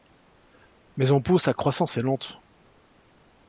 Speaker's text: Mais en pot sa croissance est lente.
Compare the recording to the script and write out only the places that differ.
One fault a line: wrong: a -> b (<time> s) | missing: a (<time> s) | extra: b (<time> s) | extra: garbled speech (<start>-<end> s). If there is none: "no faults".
no faults